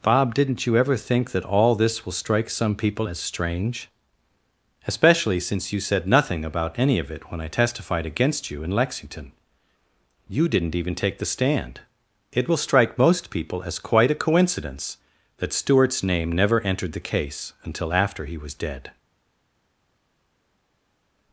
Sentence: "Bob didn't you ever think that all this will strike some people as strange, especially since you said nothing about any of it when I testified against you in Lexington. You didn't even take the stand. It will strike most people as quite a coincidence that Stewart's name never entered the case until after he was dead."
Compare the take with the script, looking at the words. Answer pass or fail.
pass